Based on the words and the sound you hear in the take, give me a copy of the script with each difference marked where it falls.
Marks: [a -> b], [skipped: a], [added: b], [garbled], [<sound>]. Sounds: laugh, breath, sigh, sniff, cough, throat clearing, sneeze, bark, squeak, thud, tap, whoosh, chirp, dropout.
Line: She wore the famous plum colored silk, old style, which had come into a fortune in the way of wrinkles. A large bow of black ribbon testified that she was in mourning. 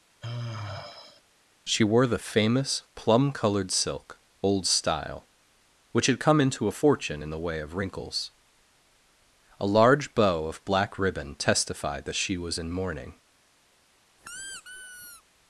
[sigh] She wore the famous plum colored silk, old style, which had come into a fortune in the way of wrinkles. A large bow of black ribbon testified that she was in mourning. [squeak]